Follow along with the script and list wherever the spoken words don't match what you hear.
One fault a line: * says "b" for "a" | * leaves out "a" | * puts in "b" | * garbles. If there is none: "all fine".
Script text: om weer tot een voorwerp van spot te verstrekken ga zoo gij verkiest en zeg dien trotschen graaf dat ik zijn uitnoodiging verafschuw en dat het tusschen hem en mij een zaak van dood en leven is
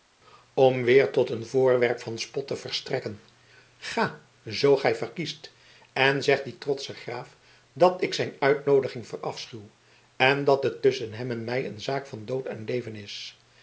all fine